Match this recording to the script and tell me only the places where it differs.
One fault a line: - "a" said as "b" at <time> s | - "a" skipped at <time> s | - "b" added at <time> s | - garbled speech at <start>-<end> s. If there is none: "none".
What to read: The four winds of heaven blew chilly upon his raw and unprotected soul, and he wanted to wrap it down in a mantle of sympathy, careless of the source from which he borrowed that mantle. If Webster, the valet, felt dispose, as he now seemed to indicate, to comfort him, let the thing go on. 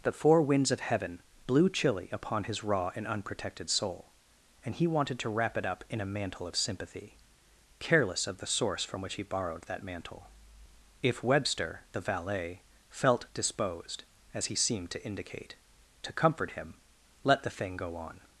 - "down" said as "up" at 5.7 s
- "dispose" said as "disposed" at 13.3 s
- "now" skipped at 14.6 s